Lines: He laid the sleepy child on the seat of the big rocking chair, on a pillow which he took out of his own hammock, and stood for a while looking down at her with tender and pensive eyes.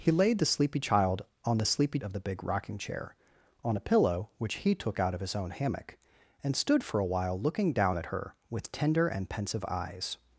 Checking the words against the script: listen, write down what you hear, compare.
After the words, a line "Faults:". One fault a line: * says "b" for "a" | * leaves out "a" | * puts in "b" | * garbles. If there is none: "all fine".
He laid the sleepy child on the sleepy of the big rocking chair, on a pillow which he took out of his own hammock, and stood for a while looking down at her with tender and pensive eyes.
Faults:
* says "sleepy" for "seat"